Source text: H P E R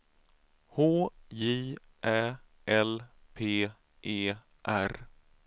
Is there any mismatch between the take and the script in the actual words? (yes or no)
yes